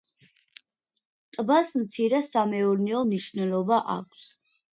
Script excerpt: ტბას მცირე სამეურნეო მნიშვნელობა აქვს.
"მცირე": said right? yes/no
yes